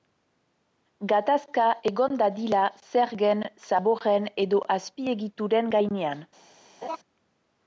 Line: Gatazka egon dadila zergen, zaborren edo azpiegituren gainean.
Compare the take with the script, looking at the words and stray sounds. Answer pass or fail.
fail